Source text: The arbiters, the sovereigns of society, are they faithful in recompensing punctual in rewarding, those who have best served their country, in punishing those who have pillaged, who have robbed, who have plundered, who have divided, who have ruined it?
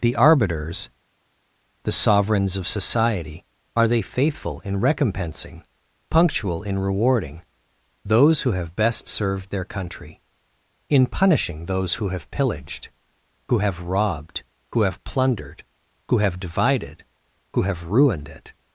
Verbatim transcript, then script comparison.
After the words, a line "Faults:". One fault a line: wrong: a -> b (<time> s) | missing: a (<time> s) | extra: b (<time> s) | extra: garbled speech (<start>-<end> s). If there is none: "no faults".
The arbiters, the sovereigns of society, are they faithful in recompensing punctual in rewarding, those who have best served their country, in punishing those who have pillaged, who have robbed, who have plundered, who have divided, who have ruined it?
Faults:
no faults